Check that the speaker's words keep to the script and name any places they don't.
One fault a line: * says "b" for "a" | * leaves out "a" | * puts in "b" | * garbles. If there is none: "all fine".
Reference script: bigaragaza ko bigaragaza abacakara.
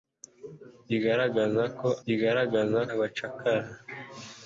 all fine